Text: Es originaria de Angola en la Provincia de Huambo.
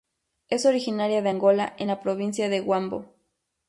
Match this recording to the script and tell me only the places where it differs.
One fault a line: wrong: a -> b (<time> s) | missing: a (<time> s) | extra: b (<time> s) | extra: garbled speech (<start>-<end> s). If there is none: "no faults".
no faults